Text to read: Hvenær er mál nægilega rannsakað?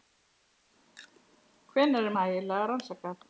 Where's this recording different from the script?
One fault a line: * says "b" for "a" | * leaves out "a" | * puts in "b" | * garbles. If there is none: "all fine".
* leaves out "mál"